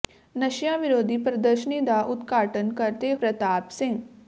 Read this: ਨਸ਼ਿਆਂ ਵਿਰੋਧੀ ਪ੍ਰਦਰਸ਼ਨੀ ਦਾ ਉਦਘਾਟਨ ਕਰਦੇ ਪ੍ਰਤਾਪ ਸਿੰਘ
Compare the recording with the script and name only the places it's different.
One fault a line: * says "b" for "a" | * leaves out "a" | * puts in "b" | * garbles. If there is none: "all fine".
all fine